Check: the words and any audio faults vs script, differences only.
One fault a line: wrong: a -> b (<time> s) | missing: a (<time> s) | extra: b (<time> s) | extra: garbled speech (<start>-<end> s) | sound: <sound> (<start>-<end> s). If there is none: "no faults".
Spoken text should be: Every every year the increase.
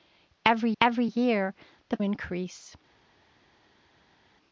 no faults